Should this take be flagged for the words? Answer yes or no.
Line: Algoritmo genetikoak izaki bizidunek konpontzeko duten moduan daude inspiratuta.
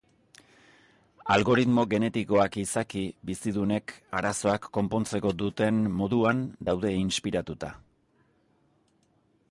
yes